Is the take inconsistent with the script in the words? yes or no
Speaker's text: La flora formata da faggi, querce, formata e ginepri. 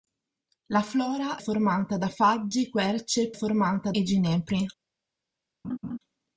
no